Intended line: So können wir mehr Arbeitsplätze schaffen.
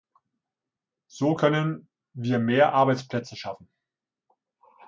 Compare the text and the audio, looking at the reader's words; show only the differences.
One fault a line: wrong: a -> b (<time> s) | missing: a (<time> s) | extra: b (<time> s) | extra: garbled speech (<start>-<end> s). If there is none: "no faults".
no faults